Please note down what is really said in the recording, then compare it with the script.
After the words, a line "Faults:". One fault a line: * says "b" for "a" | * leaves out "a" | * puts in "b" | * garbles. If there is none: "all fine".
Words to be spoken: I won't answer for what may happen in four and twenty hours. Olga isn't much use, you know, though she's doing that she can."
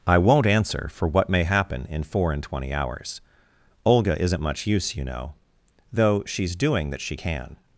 I won't answer for what may happen in four and twenty hours. Olga isn't much use, you know, though she's doing that she can."
Faults:
all fine